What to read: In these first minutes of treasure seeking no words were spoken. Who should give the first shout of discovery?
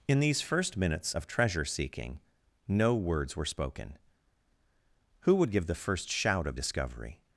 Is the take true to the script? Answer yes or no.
no